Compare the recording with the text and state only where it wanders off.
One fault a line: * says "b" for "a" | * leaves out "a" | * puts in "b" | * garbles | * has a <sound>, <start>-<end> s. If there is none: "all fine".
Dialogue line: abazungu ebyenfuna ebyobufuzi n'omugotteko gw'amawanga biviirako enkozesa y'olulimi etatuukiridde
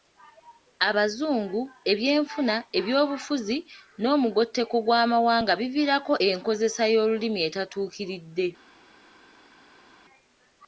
all fine